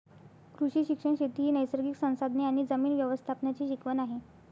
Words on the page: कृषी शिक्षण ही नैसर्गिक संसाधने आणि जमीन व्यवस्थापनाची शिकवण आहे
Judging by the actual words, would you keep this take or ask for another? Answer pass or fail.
fail